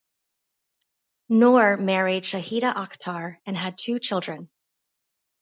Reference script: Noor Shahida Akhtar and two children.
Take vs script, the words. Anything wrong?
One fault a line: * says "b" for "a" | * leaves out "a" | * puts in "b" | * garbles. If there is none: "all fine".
* puts in "married"
* puts in "had"